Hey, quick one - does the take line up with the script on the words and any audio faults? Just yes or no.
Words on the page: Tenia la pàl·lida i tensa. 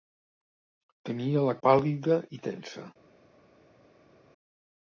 yes